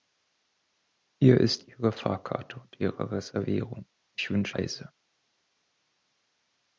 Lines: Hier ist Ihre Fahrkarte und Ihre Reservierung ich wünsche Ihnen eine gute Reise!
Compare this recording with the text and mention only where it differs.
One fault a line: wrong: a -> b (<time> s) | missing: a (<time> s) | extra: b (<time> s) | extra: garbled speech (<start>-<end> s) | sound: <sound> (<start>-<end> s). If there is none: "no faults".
missing: Ihnen eine gute (4.6 s)